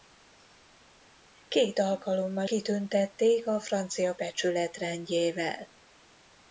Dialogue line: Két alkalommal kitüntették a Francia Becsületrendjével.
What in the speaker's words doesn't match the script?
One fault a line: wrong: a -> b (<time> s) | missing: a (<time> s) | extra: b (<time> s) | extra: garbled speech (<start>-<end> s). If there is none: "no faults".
no faults